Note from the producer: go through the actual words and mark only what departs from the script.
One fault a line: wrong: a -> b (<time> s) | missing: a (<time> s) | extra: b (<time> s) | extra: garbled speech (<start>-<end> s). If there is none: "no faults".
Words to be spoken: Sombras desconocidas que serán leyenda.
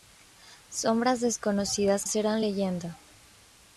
missing: que (2.1 s)